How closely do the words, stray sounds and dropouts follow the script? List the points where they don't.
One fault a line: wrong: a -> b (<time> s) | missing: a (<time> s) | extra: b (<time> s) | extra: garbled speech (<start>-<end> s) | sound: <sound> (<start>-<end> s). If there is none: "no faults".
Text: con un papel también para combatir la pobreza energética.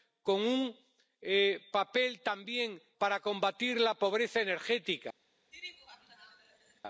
sound: laugh (5.5-6.8 s)